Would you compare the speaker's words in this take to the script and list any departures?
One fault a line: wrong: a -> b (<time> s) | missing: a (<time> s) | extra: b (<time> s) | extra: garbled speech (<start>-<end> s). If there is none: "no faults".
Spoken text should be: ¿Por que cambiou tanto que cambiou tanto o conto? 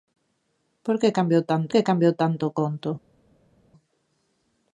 no faults